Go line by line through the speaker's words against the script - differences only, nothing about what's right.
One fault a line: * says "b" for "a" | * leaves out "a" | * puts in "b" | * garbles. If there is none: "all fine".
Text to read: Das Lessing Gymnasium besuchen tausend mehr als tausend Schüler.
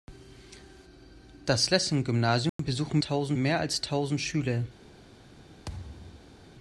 all fine